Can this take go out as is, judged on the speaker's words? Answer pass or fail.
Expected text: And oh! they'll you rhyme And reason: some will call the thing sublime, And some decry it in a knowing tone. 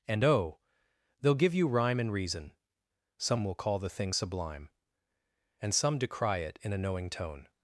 fail